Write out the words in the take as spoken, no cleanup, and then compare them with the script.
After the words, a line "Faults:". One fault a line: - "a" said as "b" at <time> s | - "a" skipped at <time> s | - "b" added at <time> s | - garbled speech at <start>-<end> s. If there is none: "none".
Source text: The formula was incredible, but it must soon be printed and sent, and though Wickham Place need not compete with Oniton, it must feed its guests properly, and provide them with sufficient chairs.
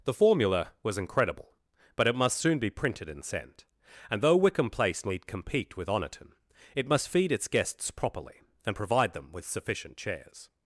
The formula was incredible, but it must soon be printed and sent, and though Wickham Place need compete with Oniton, it must feed its guests properly, and provide them with sufficient chairs.
Faults:
- "not" skipped at 5.3 s